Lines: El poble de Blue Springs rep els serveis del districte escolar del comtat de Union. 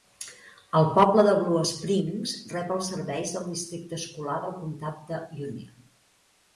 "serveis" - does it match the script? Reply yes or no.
yes